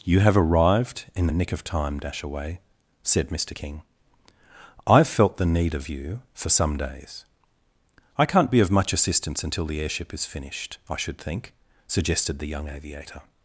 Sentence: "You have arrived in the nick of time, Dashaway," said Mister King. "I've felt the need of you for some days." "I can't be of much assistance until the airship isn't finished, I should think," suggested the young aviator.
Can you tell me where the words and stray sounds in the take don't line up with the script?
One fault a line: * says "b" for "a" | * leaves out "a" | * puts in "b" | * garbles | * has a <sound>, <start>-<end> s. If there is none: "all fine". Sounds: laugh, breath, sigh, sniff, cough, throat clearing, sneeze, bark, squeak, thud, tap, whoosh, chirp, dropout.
* says "is" for "isn't"